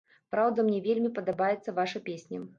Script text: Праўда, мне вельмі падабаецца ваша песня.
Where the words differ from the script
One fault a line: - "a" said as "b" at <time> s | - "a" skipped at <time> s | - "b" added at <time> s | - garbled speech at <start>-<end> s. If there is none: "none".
none